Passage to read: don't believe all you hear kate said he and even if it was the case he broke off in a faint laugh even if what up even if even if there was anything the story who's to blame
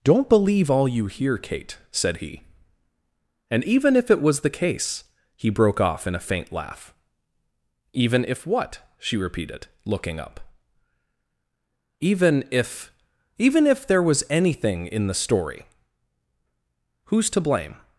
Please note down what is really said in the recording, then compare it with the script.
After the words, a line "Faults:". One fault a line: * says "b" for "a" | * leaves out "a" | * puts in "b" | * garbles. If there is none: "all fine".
don't believe all you hear kate said he and even if it was the case he broke off in a faint laugh even if what she repeated looking up even if even if there was anything in the story who's to blame
Faults:
* puts in "she repeated looking"
* puts in "in"